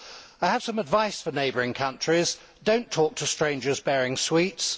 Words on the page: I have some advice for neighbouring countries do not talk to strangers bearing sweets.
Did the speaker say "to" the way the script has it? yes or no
yes